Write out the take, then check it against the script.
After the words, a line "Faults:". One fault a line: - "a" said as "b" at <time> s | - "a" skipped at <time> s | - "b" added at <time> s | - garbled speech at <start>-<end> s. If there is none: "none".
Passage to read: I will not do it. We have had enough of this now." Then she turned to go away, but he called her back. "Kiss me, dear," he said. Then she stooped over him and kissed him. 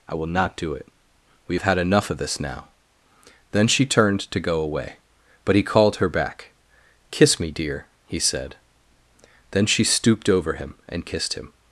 I will not do it. We have had enough of this now." Then she turned to go away, but he called her back. "Kiss me, dear," he said. Then she stooped over him and kissed him.
Faults:
none